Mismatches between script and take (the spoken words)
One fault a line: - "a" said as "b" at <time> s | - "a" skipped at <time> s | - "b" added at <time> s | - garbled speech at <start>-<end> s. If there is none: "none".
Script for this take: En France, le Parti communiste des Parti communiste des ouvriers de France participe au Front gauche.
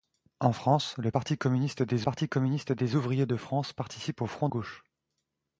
none